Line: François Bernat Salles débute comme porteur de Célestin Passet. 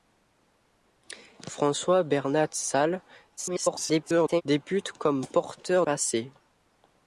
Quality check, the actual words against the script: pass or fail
fail